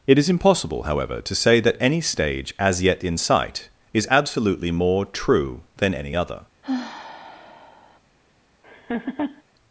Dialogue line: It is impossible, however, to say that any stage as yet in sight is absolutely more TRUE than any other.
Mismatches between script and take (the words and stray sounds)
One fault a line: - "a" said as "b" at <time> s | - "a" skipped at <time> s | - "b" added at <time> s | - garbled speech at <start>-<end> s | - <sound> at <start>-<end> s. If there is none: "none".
- sigh at 6.6-8.0 s
- laugh at 8.6-9.4 s